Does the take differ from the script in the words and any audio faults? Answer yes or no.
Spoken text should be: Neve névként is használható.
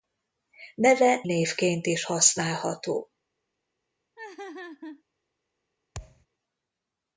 yes